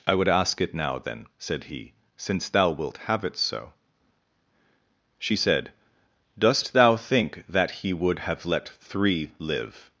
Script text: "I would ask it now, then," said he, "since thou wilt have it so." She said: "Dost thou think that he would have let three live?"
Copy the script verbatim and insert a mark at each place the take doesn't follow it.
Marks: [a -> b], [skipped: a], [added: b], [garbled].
"I would ask it now, then," said he, "since thou wilt have it so." She said: "Dost thou think that he would have let three live?"